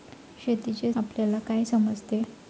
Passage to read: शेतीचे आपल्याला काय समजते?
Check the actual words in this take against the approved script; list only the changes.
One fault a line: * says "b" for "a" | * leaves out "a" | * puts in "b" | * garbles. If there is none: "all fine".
all fine